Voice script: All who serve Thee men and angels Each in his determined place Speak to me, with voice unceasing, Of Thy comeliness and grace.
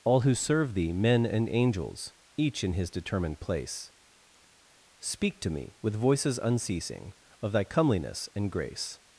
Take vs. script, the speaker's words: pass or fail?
fail